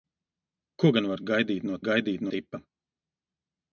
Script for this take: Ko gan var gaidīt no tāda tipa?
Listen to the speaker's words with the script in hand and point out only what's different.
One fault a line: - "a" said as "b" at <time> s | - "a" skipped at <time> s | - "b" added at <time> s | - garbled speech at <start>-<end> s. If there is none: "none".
- "tāda" said as "gaidīt" at 1.9 s